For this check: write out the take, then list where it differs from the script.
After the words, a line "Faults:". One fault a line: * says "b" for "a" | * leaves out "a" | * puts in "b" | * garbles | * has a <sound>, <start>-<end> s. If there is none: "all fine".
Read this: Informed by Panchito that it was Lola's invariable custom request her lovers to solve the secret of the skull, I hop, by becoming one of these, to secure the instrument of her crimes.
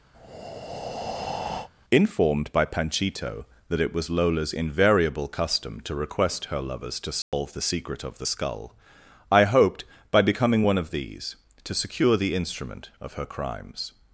Informed by Panchito that it was Lola's invariable custom to request her lovers to solve the secret of the skull, I hoped, by becoming one of these, to secure the instrument of her crimes.
Faults:
* has a breath, 0.1-1.7 s
* puts in "to"
* has a dropout, 7.2-7.3 s
* says "hoped" for "hop"